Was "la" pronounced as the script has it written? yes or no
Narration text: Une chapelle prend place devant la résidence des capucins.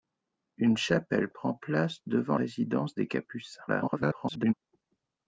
no